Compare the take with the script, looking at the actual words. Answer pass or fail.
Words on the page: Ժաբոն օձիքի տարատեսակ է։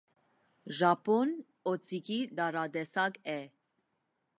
pass